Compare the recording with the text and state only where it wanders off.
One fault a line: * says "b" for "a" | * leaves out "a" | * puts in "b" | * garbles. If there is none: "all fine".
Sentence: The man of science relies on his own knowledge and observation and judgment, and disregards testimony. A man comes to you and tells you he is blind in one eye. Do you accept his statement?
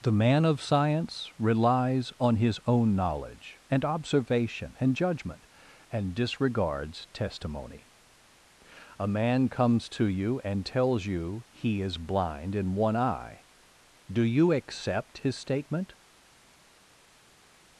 all fine